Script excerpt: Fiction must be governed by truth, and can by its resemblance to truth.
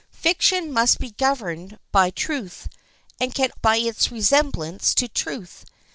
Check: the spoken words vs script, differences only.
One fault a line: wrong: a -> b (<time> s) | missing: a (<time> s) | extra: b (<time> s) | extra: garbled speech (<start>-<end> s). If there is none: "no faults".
no faults